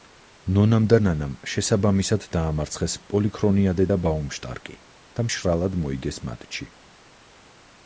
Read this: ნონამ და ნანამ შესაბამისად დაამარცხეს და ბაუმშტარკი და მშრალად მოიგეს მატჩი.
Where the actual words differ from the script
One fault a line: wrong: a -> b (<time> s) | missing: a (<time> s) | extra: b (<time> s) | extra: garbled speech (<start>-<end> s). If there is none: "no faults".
extra: პოლიქრონიადე (3.1 s)